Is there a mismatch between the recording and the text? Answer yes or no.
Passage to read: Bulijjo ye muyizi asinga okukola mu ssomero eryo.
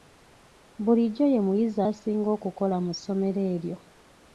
no